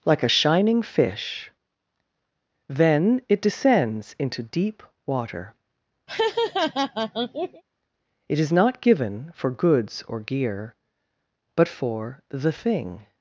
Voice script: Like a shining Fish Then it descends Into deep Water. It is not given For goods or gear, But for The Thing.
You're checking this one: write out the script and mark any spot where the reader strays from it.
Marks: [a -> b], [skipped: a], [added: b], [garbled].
Like a shining Fish Then it descends Into deep Water. It is not given For goods or gear, But for The Thing.